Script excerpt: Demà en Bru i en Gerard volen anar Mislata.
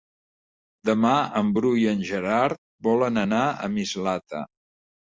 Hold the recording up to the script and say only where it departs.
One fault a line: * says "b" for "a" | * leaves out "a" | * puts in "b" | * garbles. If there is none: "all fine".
* puts in "a"